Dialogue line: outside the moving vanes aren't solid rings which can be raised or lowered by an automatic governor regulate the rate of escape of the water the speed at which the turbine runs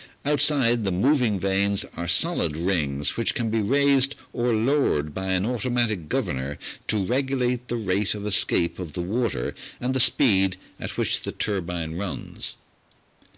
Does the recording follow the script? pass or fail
fail